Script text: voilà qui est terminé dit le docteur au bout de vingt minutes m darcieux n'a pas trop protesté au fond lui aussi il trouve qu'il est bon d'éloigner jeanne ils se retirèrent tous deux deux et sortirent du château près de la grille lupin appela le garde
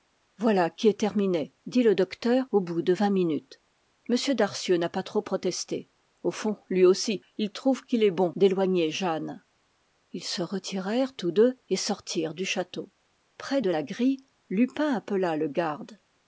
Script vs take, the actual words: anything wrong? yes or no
yes